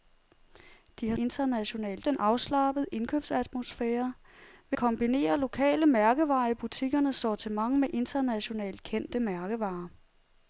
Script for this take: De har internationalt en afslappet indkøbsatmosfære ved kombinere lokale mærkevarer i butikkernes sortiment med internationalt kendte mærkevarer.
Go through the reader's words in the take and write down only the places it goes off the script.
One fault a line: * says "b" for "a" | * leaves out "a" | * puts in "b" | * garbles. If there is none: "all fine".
all fine